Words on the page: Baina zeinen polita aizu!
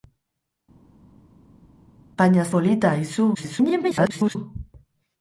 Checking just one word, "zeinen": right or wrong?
wrong